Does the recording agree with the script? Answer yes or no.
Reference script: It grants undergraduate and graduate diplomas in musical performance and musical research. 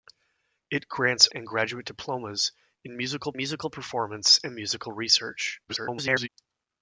no